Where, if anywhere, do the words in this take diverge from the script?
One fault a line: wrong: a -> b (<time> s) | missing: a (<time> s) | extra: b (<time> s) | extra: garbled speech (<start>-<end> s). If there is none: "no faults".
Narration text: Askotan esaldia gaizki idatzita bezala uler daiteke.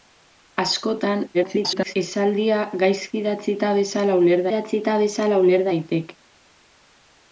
extra: garbled speech (1.3-1.9 s)
extra: idatzita bezala uler (4.5 s)